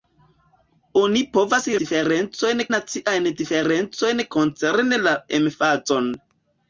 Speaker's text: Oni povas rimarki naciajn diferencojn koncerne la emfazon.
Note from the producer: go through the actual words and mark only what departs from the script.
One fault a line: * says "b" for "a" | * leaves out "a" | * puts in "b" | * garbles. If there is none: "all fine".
* says "diferencojn" for "rimarki"